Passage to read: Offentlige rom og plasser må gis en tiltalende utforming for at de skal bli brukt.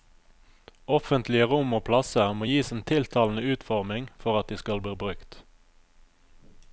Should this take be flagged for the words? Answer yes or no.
no